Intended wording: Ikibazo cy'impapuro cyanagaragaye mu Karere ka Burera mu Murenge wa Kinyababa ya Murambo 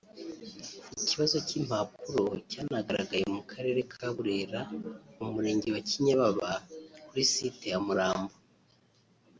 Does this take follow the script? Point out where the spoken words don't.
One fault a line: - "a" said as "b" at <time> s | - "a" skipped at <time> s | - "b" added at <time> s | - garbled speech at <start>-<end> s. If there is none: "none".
- "kuri site" added at 7.1 s